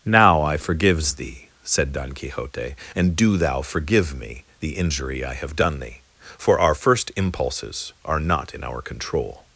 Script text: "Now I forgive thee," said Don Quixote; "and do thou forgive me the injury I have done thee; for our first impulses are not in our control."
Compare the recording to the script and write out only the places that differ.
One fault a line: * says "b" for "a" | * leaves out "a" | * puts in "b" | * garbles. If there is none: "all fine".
* says "forgives" for "forgive"